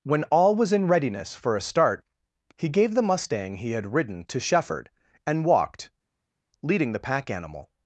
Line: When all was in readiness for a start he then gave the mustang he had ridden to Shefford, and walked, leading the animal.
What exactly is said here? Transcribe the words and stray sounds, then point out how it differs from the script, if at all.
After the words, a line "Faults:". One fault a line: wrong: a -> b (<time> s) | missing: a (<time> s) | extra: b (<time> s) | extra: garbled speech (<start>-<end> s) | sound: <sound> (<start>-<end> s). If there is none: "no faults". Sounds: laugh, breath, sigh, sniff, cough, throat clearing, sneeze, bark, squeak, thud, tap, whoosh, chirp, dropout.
When all was in readiness for a start he gave the mustang he had ridden to Shefford, and walked, leading the pack animal.
Faults:
missing: then (2.7 s)
extra: pack (7.0 s)